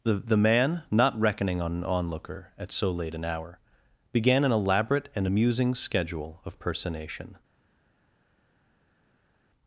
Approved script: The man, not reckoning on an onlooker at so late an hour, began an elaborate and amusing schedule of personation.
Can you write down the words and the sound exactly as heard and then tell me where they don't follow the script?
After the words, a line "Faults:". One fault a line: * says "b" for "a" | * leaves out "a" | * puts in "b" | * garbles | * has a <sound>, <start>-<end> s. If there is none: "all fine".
The the man, not reckoning on an onlooker at so late an hour, began an elaborate and amusing schedule of personation.
Faults:
* puts in "the"